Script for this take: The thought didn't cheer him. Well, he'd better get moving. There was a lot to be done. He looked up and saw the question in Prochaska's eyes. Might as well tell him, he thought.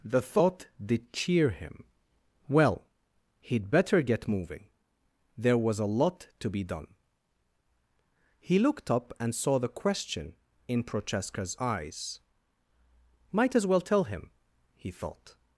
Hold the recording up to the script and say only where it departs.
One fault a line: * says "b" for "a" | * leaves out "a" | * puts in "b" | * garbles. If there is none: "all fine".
* says "did" for "didn't"